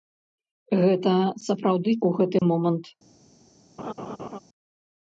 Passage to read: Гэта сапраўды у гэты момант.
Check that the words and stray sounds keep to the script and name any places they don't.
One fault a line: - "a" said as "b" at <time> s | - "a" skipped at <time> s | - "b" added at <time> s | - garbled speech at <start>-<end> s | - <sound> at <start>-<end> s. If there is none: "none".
- dropout at 2.4-2.4 s
- laugh at 3.8-4.4 s